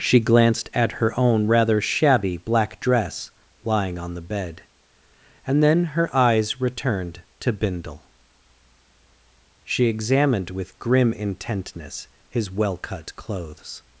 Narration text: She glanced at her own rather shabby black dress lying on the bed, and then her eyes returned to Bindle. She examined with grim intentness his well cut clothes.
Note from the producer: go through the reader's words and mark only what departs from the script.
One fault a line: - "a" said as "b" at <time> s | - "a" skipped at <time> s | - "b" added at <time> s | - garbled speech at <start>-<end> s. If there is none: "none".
none